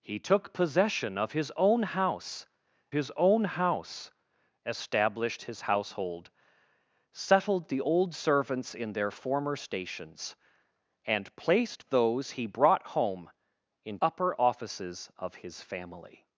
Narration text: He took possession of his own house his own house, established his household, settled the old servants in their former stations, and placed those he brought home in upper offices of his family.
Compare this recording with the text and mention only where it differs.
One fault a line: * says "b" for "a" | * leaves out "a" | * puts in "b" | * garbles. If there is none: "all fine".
all fine